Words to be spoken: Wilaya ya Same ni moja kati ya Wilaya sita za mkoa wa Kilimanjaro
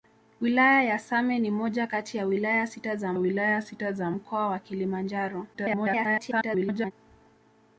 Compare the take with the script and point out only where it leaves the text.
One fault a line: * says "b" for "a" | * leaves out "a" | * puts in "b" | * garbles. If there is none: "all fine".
* puts in "Wilaya sita za"
* garbles